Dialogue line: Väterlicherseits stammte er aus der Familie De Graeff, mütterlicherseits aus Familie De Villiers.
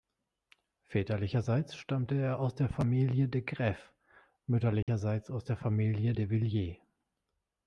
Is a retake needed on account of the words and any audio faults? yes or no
yes